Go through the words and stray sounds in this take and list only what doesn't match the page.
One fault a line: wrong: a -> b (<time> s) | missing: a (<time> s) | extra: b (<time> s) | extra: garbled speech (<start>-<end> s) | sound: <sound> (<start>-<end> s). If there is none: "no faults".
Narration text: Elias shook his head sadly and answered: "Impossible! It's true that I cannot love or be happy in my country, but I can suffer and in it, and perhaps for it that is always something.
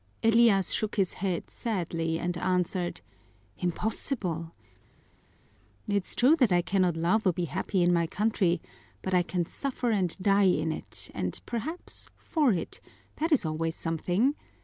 extra: die (10.2 s)